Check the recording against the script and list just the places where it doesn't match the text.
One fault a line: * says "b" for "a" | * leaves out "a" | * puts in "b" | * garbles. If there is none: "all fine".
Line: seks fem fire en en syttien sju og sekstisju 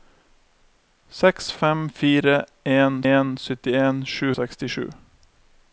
all fine